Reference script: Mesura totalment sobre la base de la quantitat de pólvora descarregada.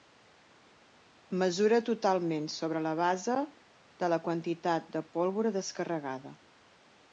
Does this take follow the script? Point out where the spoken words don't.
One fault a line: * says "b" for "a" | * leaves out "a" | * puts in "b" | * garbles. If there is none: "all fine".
all fine